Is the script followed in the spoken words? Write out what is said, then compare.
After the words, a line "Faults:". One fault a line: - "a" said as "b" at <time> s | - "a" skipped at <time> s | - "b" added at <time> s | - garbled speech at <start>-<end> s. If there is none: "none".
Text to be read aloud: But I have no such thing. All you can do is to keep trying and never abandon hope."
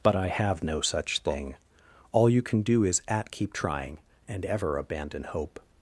But I have no such thing. All you can do is at keep trying and ever abandon hope."
Faults:
- "to" said as "at" at 3.1 s
- "never" said as "ever" at 4.4 s